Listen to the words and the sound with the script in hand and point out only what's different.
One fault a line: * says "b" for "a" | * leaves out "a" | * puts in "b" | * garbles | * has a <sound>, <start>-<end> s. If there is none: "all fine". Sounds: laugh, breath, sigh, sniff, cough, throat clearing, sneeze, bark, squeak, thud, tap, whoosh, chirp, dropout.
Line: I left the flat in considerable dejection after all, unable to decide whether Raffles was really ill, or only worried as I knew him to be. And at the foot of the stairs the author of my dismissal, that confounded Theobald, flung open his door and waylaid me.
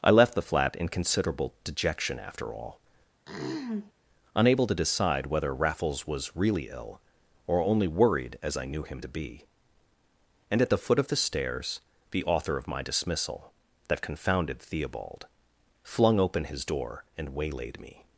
* has a throat clearing, 3.3-3.9 s